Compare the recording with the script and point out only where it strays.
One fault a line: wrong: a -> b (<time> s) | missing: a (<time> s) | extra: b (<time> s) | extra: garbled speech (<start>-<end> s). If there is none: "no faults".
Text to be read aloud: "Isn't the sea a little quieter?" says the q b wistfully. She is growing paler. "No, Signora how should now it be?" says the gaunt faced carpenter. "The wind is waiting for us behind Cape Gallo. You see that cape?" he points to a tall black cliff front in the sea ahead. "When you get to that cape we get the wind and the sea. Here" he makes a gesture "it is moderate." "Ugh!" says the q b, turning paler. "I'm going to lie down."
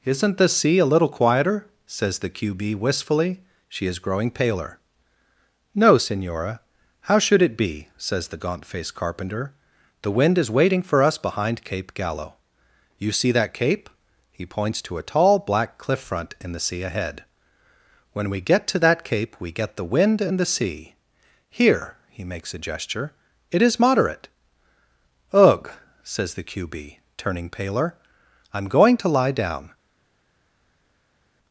missing: now (7.4 s)
wrong: you -> we (18.3 s)